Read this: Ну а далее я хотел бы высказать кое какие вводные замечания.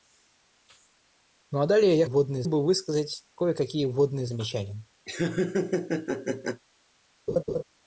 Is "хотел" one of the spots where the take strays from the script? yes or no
yes